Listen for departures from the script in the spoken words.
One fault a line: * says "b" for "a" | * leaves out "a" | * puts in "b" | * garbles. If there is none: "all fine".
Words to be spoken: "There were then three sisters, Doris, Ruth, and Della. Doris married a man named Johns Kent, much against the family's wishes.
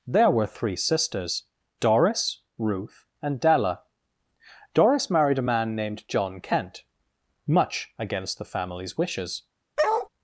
* leaves out "then"
* says "John" for "Johns"